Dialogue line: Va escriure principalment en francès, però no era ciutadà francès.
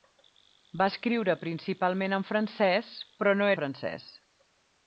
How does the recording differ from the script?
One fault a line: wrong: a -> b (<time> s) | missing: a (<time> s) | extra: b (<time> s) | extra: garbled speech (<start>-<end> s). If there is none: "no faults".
missing: era ciutadà (3.5 s)